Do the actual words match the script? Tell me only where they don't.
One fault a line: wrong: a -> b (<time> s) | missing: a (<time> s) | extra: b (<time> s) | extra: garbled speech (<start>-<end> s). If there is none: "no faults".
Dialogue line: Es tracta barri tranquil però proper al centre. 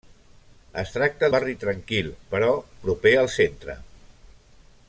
no faults